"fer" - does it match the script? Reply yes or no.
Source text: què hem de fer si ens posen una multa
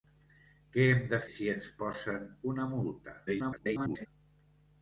no